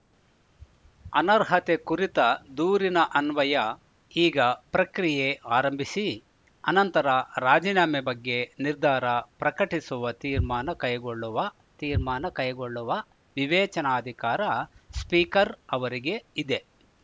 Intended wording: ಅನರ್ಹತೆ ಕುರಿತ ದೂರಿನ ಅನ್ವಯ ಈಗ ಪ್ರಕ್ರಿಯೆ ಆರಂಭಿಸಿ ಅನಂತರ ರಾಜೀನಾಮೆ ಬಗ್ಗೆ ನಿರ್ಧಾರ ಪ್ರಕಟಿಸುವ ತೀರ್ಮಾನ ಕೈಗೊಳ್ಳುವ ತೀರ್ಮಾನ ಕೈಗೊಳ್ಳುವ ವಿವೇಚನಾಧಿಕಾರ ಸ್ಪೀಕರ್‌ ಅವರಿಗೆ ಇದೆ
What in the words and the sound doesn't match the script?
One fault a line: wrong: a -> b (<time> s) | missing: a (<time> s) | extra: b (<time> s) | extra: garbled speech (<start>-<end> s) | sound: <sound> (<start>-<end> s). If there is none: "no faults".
no faults